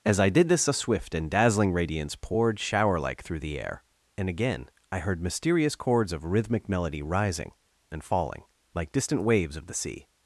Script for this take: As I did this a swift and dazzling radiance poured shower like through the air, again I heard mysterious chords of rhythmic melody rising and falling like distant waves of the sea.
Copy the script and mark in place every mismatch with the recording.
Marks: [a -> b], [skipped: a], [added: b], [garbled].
As I did this a swift and dazzling radiance poured shower like through the air, [added: and] again I heard mysterious chords of rhythmic melody rising and falling like distant waves of the sea.